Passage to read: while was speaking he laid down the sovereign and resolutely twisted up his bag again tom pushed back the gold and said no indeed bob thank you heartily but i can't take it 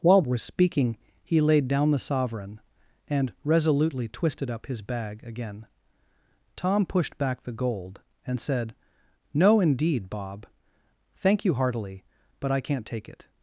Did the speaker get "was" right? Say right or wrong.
right